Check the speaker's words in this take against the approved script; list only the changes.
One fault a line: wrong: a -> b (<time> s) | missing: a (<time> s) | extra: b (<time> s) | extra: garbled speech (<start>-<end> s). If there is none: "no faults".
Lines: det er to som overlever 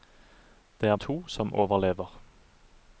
no faults